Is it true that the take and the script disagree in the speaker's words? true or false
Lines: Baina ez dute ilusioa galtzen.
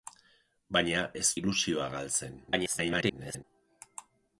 true